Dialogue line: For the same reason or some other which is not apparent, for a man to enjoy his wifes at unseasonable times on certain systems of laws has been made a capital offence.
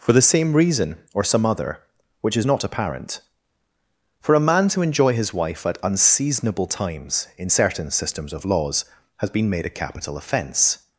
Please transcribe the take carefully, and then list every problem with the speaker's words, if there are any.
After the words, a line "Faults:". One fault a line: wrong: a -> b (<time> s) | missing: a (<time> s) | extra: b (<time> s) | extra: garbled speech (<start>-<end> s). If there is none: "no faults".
For the same reason or some other which is not apparent, for a man to enjoy his wife at unseasonable times in certain systems of laws has been made a capital offence.
Faults:
wrong: wifes -> wife (5.3 s)
wrong: on -> in (7.4 s)